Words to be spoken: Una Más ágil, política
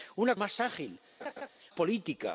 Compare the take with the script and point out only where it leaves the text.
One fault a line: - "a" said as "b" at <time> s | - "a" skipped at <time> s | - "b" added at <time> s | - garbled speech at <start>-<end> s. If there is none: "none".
none